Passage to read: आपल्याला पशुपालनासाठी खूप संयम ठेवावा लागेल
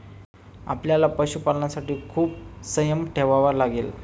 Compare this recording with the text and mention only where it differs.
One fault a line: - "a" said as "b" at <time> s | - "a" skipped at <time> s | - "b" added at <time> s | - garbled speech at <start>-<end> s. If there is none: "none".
none